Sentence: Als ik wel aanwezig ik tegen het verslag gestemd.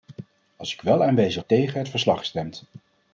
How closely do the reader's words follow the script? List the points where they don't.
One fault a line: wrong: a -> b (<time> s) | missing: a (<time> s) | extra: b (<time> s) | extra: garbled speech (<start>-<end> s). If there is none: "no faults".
no faults